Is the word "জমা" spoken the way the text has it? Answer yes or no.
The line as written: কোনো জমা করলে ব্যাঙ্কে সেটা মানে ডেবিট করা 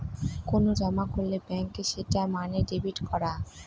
yes